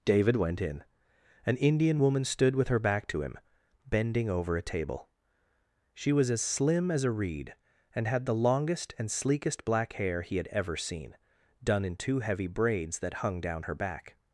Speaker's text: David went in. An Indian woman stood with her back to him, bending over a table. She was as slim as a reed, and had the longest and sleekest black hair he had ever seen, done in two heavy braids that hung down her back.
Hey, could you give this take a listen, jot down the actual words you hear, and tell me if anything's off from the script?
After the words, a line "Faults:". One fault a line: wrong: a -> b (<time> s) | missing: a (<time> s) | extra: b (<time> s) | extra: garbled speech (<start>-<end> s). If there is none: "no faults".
David went in. An Indian woman stood with her back to him, bending over a table. She was as slim as a reed, and had the longest and sleekest black hair he had ever seen, done in two heavy braids that hung down her back.
Faults:
no faults